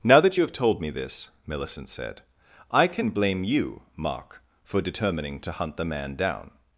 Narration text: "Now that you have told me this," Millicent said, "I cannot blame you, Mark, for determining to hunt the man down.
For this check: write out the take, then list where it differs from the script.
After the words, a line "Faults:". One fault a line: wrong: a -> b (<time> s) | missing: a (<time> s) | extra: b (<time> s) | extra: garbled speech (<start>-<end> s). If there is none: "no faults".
"Now that you have told me this," Millicent said, "I can blame you, Mark, for determining to hunt the man down.
Faults:
wrong: cannot -> can (2.9 s)